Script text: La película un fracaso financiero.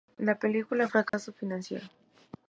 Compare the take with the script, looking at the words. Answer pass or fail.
pass